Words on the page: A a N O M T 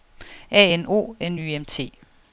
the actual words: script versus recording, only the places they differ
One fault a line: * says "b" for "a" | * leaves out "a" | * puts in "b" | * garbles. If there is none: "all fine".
* says "N O" for "a"
* says "Y" for "O"